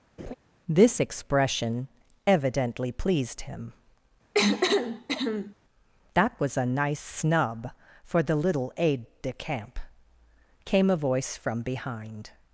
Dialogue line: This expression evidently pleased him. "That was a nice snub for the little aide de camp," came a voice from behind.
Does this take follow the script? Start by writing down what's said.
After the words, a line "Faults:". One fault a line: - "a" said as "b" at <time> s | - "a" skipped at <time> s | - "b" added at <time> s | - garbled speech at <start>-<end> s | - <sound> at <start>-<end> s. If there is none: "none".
This expression evidently pleased him. "That was a nice snub for the little aide de camp," came a voice from behind.
Faults:
- laugh at 0.2-0.3 s
- cough at 4.3-5.5 s